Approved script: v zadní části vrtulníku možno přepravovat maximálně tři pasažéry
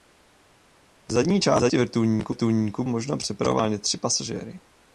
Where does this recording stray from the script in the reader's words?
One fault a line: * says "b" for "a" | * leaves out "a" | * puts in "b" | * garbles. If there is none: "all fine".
all fine